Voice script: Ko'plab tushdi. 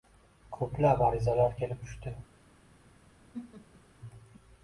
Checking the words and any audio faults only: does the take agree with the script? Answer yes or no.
no